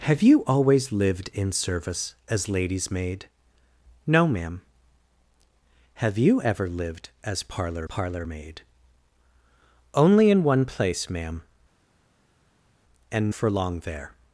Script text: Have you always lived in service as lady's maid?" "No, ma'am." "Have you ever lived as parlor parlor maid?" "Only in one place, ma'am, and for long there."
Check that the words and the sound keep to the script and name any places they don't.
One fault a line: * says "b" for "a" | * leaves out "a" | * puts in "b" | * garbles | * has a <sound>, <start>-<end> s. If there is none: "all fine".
all fine